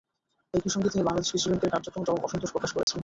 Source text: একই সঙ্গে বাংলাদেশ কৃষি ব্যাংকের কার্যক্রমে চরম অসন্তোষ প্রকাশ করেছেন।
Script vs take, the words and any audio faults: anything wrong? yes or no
yes